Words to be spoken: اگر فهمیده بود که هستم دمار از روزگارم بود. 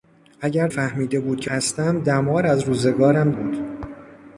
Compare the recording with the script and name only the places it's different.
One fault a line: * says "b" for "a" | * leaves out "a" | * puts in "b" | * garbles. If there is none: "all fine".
all fine